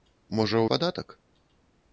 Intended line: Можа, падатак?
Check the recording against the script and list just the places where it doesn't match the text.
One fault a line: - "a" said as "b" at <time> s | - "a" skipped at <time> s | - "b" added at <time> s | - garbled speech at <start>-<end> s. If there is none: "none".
none